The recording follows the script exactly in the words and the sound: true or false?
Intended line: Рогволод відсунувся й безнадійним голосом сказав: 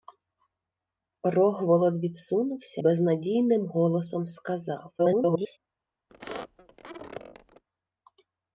false